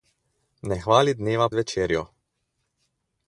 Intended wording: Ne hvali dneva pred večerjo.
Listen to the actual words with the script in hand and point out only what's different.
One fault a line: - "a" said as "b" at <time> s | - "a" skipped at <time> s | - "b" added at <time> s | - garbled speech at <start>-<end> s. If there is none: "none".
- "pred" skipped at 1.5 s